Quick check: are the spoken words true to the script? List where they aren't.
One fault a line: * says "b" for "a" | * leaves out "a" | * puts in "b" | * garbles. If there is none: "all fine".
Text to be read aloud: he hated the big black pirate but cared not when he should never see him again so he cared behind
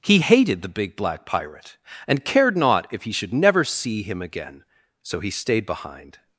* says "and" for "but"
* says "if" for "when"
* says "stayed" for "cared"